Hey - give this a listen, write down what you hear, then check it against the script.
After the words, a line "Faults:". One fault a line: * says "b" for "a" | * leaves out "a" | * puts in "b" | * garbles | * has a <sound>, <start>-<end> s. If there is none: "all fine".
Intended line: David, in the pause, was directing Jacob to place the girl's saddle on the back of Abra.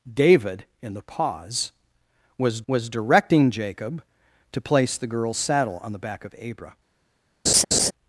David, in the pause, was was directing Jacob to place the girl's saddle on the back of Abra.
Faults:
* puts in "was"
* has a laugh, 7.5-7.9 s